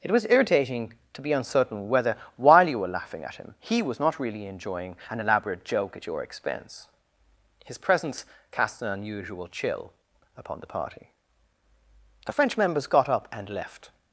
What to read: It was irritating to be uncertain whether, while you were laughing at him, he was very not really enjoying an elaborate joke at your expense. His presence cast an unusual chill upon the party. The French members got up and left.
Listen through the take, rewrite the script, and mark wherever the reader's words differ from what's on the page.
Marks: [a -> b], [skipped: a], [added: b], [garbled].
It was irritating to be uncertain whether, while you were laughing at him, he was [skipped: very] not really enjoying an elaborate joke at your expense. His presence cast an unusual chill upon the party. The French members got up and left.